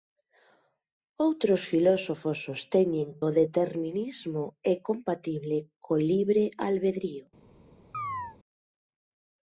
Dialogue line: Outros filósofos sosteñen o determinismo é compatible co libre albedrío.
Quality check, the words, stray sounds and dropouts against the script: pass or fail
fail